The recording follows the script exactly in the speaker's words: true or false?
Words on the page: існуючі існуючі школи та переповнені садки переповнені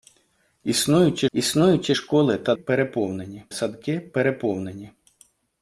true